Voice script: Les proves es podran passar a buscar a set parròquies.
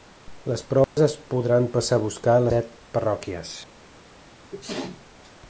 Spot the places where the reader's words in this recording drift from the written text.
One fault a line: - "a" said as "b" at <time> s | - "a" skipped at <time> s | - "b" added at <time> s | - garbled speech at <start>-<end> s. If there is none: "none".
none